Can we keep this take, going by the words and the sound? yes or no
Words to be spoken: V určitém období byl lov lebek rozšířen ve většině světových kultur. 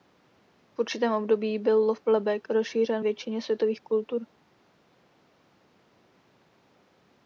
no